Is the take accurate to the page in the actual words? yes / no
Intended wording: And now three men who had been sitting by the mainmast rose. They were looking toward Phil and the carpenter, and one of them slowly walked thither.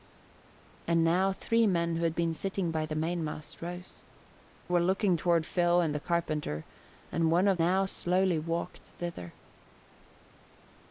no